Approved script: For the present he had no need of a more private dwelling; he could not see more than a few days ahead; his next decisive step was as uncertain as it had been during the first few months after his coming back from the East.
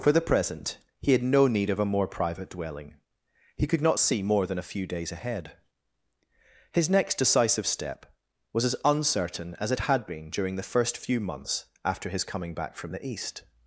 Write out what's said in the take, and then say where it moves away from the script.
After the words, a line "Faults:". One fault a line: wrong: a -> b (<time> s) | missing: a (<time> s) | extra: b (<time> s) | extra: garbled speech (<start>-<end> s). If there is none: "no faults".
For the present he had no need of a more private dwelling; he could not see more than a few days ahead; his next decisive step was as uncertain as it had been during the first few months after his coming back from the East.
Faults:
no faults